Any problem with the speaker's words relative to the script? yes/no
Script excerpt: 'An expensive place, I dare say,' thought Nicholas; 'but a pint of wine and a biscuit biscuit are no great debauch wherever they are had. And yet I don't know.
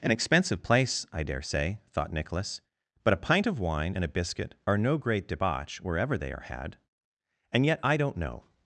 yes